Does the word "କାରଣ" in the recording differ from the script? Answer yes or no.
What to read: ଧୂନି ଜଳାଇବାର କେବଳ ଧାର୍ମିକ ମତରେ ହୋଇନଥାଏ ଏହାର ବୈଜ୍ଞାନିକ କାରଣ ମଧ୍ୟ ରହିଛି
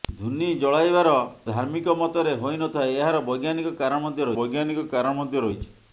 no